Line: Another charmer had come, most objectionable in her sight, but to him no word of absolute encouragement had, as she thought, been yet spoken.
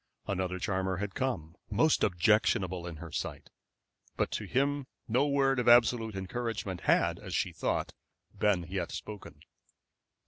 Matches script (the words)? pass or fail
pass